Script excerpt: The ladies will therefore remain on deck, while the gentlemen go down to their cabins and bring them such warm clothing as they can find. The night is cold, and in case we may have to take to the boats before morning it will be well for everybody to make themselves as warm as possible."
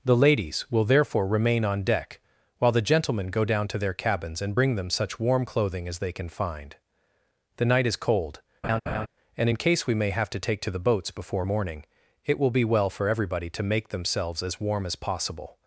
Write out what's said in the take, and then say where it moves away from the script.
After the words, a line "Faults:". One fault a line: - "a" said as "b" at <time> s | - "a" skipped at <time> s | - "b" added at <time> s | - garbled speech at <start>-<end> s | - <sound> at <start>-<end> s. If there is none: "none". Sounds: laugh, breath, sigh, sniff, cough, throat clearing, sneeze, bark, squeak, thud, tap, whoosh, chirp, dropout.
The ladies will therefore remain on deck, while the gentlemen go down to their cabins and bring them such warm clothing as they can find. The night is cold, and in case we may have to take to the boats before morning it will be well for everybody to make themselves as warm as possible."
Faults:
- laugh at 8.6-9.1 s